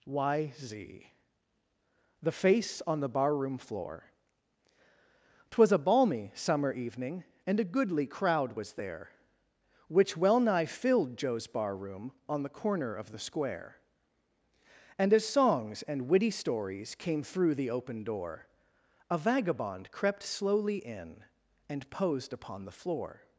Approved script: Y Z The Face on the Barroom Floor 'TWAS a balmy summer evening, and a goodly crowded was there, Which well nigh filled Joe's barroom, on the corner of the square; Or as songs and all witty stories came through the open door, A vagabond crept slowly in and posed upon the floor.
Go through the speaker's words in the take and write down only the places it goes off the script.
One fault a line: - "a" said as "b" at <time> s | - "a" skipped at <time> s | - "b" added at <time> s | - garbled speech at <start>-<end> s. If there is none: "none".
- "crowded" said as "crowd" at 8.1 s
- "Or" said as "And" at 15.0 s
- "all" skipped at 16.1 s